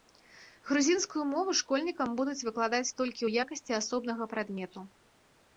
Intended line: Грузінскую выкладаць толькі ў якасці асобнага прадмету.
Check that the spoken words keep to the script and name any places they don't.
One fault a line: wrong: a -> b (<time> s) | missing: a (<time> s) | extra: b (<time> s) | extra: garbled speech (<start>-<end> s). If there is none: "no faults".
extra: мову школьнікам будуць (1.3 s)